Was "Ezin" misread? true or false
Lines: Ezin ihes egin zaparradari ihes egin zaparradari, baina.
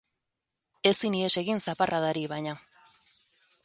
false